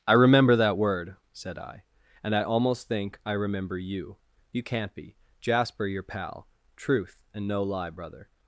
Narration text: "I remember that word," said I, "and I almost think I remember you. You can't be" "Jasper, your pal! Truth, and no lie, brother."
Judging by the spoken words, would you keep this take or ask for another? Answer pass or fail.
pass